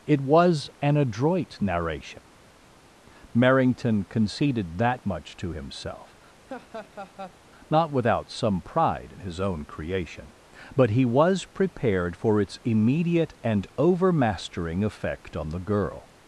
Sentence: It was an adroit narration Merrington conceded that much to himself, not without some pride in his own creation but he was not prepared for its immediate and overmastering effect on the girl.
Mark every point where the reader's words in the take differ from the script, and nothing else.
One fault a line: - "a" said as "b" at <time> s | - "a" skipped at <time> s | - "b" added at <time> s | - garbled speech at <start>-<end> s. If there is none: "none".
- "not" skipped at 11.4 s